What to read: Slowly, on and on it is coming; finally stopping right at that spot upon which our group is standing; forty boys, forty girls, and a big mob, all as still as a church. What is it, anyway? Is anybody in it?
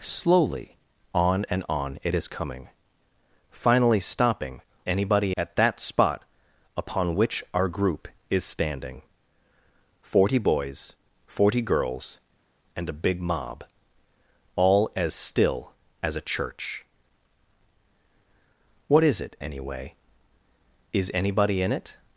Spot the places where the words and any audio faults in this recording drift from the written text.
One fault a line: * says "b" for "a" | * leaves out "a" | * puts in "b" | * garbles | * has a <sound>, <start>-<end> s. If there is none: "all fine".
* says "anybody" for "right"